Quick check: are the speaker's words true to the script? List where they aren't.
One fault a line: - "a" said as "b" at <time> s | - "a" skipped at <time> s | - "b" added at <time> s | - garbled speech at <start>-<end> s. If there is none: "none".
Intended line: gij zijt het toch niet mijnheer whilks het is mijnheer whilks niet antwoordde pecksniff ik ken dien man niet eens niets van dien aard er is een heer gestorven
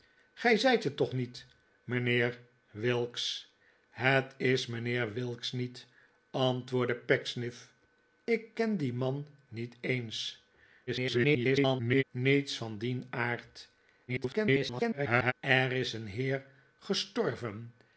- garbled speech at 10.9-12.0 s
- garbled speech at 14.1-15.3 s